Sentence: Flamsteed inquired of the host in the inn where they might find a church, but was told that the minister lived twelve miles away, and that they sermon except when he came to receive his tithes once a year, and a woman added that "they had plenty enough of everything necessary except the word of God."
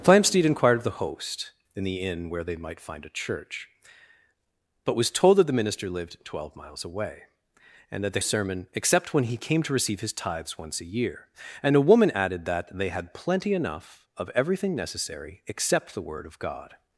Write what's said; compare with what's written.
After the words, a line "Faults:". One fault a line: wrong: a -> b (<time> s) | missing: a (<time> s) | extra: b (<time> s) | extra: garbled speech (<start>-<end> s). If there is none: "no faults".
Flamsteed inquired of the host in the inn where they might find a church, but was told that the minister lived twelve miles away, and that they sermon except when he came to receive his tithes once a year, and a woman added that "they had plenty enough of everything necessary except the word of God."
Faults:
no faults